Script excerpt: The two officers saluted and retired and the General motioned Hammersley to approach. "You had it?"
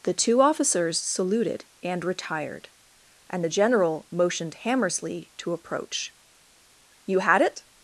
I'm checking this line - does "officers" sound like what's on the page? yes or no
yes